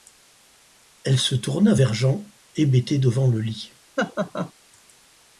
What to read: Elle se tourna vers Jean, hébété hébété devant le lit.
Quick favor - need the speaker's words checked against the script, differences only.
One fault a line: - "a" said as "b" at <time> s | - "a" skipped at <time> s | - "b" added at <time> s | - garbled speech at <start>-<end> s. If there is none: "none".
- "hébété" skipped at 3.0 s